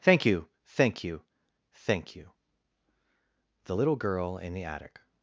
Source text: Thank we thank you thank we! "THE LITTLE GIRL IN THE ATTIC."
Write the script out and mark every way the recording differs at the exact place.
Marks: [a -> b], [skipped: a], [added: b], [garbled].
Thank [we -> you] thank you thank [we! -> you] "THE LITTLE GIRL IN THE ATTIC."